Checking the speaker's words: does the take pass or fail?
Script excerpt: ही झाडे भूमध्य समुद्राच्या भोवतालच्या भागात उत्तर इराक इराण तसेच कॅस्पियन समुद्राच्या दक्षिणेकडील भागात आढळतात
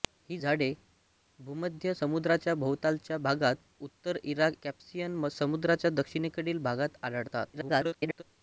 fail